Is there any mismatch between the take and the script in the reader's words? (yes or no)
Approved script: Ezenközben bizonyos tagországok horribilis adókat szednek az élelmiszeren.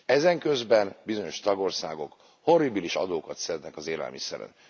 no